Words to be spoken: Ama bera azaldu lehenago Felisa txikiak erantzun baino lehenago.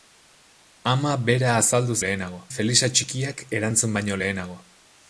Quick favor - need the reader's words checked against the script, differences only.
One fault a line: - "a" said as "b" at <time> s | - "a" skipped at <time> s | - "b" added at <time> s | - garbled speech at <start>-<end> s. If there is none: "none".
none